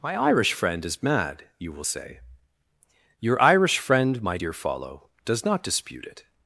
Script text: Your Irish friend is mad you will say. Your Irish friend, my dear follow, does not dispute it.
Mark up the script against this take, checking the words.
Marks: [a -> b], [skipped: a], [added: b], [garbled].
[Your -> My] Irish friend is mad you will say. Your Irish friend, my dear follow, does not dispute it.